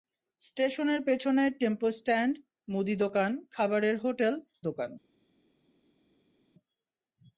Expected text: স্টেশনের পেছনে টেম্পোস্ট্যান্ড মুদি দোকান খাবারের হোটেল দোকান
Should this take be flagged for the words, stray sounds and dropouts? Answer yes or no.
no